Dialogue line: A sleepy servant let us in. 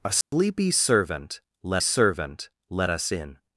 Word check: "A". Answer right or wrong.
right